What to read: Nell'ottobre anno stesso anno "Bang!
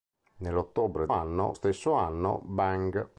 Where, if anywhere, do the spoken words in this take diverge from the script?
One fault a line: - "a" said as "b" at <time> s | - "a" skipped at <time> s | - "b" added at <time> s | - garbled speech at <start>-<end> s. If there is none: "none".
none